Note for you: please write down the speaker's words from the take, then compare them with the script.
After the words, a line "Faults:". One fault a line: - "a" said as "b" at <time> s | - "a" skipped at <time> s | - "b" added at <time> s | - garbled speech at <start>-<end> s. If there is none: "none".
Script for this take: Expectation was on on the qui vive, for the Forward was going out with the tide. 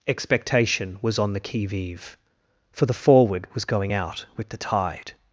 Expectation was on the qui vive, for the Forward was going out with the tide.
Faults:
- "on" skipped at 1.3 s